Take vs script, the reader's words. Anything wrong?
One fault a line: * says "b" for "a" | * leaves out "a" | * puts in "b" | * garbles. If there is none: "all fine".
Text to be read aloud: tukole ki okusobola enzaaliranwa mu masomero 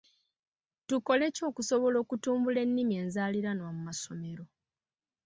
* puts in "okutumbula ennimi"